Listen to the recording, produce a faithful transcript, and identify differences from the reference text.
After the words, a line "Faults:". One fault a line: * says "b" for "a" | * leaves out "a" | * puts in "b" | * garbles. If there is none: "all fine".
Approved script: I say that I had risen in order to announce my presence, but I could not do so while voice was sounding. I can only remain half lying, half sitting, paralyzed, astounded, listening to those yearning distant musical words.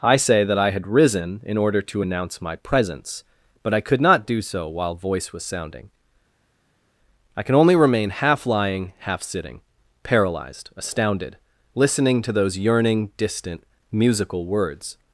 I say that I had risen in order to announce my presence, but I could not do so while voice was sounding. I can only remain half lying, half sitting, paralyzed, astounded, listening to those yearning distant musical words.
Faults:
all fine